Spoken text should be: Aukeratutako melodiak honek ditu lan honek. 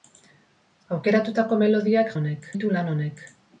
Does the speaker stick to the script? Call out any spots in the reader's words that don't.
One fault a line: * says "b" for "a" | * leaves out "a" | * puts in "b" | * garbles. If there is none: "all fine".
all fine